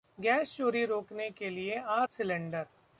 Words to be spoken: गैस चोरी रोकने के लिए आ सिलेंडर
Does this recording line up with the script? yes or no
yes